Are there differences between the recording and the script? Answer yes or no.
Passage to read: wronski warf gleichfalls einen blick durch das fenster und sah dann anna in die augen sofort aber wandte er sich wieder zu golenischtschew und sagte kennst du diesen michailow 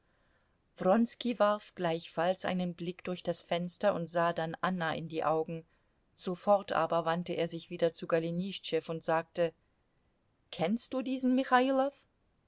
no